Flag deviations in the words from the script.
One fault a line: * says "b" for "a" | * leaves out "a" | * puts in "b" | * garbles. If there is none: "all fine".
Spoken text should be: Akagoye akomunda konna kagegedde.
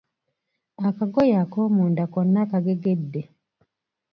all fine